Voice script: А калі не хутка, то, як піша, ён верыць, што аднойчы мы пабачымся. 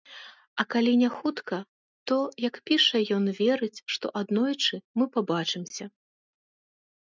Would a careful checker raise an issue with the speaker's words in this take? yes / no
no